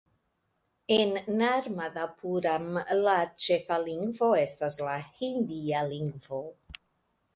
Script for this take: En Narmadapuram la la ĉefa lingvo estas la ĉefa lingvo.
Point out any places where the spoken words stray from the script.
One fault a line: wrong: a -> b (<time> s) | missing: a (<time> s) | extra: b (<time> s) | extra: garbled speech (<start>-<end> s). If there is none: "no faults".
missing: la (3.1 s)
wrong: ĉefa -> hindia (5.2 s)